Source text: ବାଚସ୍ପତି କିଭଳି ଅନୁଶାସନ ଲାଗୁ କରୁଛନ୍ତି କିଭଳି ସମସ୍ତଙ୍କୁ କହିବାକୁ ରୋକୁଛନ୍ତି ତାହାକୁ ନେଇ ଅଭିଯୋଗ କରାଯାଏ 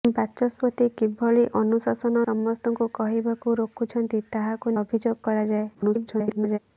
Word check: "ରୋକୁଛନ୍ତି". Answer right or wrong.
right